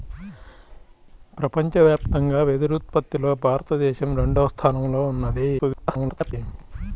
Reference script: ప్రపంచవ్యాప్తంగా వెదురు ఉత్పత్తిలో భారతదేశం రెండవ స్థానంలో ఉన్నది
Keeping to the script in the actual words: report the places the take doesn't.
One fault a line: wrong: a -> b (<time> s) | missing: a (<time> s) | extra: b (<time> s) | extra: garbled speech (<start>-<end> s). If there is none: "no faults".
extra: garbled speech (5.6-6.3 s)